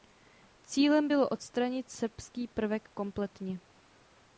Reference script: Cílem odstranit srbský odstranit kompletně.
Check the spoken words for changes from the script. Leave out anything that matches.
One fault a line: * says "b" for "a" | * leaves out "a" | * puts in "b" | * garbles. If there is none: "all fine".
* puts in "bylo"
* says "prvek" for "odstranit"